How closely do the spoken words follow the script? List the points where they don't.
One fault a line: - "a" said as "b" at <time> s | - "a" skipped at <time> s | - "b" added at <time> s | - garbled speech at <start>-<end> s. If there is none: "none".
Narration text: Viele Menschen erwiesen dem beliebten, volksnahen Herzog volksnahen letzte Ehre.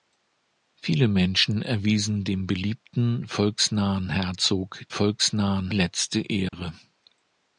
none